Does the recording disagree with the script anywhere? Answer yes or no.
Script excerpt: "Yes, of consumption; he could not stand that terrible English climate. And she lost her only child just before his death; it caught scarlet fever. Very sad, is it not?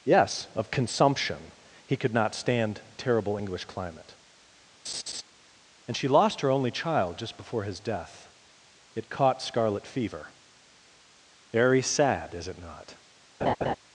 yes